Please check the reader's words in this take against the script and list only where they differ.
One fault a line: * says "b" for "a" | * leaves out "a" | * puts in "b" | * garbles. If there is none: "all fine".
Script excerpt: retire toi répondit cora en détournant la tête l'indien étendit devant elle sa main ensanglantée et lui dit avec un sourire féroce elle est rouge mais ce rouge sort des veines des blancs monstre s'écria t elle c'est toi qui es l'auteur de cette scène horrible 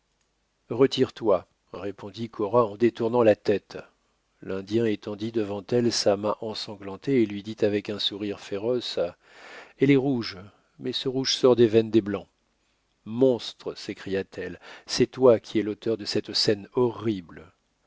all fine